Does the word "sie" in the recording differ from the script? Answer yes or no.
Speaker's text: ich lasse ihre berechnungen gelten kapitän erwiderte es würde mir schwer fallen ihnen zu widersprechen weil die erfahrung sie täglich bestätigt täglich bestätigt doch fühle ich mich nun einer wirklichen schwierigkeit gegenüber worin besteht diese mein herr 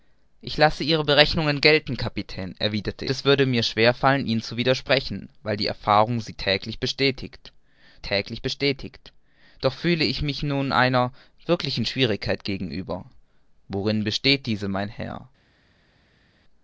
no